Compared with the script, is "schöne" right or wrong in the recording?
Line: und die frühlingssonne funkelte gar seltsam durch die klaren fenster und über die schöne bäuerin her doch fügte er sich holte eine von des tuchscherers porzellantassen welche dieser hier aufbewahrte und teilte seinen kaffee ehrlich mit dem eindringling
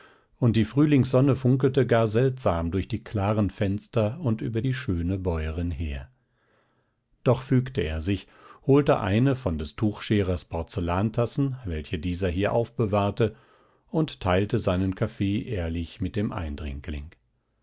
right